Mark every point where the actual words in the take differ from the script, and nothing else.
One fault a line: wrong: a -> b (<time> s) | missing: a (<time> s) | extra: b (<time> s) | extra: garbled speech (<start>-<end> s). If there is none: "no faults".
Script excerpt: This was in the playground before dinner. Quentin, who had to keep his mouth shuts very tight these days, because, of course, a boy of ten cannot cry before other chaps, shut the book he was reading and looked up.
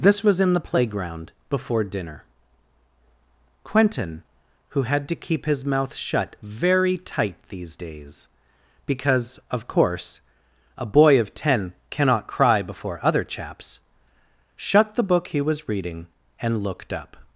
wrong: shuts -> shut (5.9 s)